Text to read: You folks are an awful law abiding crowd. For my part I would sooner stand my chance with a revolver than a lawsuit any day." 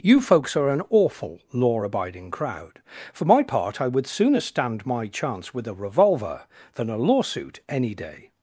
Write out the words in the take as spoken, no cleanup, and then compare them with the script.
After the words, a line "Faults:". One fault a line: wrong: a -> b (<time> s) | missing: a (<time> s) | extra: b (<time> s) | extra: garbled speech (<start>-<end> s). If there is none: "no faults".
You folks are an awful law abiding crowd. For my part I would sooner stand my chance with a revolver than a lawsuit any day."
Faults:
no faults